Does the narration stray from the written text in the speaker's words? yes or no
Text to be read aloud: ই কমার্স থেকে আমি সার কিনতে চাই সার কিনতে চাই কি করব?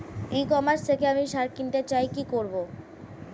yes